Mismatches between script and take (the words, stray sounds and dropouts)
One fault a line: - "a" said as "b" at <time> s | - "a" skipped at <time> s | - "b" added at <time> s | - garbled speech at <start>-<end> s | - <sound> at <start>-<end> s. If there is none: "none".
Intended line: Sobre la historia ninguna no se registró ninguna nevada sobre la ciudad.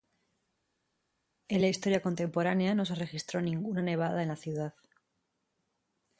- "Sobre" said as "En" at 1.5 s
- "ninguna" said as "contemporánea" at 2.0 s
- "sobre" said as "en" at 4.2 s